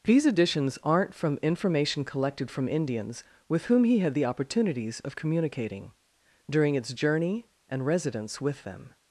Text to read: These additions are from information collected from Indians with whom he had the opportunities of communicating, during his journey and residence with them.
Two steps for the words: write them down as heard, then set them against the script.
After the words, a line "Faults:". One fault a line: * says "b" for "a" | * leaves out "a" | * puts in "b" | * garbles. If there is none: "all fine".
These additions aren't from information collected from Indians with whom he had the opportunities of communicating, during its journey and residence with them.
Faults:
* says "aren't" for "are"
* says "its" for "his"